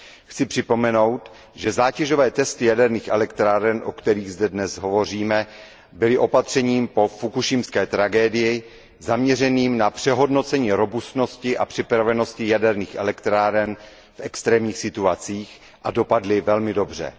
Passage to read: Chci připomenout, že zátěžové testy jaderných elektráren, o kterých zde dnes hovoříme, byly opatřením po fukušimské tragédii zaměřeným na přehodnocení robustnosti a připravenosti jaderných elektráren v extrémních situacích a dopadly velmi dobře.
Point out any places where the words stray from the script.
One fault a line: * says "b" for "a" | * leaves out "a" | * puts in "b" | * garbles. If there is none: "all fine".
all fine